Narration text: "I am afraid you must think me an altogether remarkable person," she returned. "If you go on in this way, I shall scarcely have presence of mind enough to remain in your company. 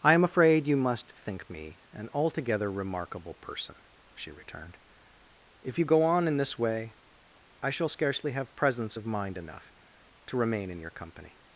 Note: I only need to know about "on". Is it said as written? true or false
true